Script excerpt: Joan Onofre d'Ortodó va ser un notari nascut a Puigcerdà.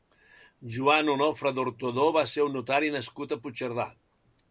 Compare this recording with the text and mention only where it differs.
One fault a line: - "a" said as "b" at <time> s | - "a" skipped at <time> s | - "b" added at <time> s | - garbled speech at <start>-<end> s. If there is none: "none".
none